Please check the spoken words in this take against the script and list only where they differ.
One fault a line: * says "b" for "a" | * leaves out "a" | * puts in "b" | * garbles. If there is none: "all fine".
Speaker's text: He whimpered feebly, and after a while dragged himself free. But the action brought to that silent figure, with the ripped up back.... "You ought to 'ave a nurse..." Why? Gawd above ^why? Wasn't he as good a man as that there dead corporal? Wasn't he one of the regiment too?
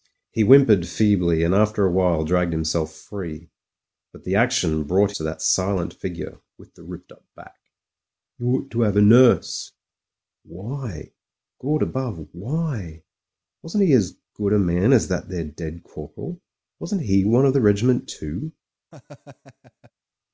all fine